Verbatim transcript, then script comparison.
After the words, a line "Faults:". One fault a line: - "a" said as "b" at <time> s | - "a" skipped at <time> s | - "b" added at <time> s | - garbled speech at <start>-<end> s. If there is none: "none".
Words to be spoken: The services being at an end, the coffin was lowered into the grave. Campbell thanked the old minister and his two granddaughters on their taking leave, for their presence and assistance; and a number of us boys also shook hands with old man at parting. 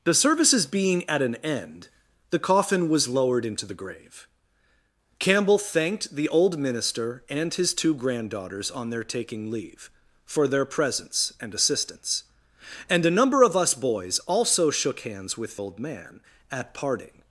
The services being at an end, the coffin was lowered into the grave. Campbell thanked the old minister and his two granddaughters on their taking leave, for their presence and assistance; and a number of us boys also shook hands with old man at parting.
Faults:
none